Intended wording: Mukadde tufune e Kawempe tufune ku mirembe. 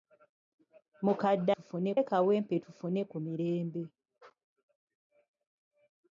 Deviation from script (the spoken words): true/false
false